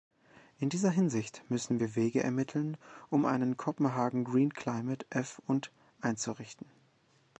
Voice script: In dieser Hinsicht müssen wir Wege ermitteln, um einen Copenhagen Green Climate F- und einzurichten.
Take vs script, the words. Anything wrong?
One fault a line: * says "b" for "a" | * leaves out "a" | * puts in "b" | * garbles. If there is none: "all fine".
all fine